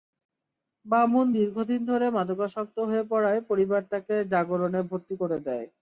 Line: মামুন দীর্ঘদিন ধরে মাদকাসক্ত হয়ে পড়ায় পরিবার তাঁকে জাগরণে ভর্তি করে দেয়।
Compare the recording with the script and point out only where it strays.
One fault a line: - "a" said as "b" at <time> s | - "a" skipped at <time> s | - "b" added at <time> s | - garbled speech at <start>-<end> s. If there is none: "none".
none